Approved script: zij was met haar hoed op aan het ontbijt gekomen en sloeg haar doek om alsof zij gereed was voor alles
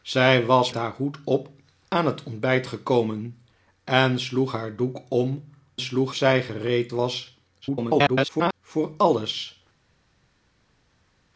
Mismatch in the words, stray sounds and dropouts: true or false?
true